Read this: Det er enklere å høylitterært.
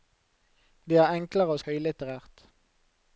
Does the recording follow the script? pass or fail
pass